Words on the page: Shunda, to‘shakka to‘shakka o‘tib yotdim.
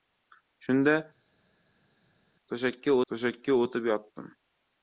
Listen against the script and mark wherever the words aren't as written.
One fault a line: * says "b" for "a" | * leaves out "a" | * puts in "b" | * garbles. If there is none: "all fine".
all fine